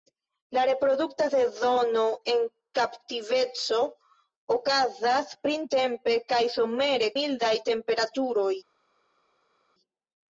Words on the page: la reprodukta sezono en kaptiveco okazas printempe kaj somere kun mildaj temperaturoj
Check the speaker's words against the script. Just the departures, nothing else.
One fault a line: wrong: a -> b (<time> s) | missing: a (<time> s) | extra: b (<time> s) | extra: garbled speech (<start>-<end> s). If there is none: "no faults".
missing: kun (7.1 s)